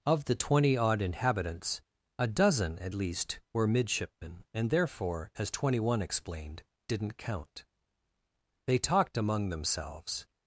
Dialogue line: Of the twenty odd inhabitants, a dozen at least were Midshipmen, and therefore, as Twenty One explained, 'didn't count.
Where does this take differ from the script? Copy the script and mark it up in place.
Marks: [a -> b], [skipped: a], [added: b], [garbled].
Of the twenty odd inhabitants, a dozen at least were Midshipmen, and therefore, as Twenty One explained, 'didn't count. [added: They talked among themselves]